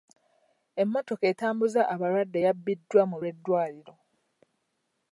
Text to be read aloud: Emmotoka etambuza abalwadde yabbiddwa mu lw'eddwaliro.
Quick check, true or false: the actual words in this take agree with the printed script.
true